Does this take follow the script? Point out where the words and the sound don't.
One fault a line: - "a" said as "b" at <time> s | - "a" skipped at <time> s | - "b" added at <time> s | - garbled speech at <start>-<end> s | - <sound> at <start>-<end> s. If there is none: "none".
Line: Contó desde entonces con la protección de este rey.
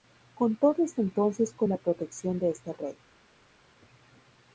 none